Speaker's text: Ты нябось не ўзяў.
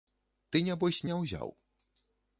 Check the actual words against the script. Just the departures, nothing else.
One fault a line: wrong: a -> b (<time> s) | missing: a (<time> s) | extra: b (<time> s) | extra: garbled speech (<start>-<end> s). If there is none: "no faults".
no faults